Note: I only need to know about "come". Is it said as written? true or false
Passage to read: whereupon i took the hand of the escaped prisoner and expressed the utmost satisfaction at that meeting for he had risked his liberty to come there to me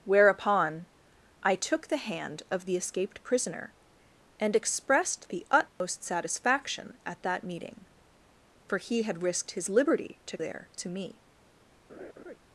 false